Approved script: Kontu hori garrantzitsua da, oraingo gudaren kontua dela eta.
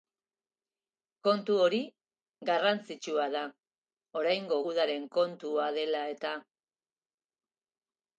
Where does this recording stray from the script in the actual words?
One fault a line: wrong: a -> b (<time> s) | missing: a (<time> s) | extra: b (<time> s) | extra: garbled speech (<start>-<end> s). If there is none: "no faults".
no faults